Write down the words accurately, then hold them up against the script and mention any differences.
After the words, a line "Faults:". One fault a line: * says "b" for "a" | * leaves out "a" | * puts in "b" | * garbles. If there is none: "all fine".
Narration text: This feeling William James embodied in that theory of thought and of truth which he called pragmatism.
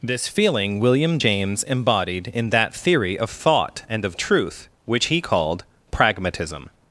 This feeling William James embodied in that theory of thought and of truth which he called pragmatism.
Faults:
all fine